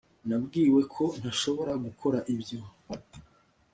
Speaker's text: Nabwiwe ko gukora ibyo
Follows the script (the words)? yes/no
no